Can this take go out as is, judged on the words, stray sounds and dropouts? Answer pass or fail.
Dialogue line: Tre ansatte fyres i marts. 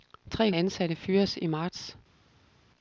pass